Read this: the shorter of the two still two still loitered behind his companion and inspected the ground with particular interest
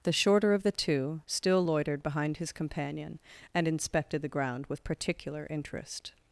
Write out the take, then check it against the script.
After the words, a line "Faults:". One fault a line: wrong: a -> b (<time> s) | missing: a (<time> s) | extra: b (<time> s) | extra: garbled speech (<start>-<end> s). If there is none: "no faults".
the shorter of the two still loitered behind his companion and inspected the ground with particular interest
Faults:
missing: two still (1.6 s)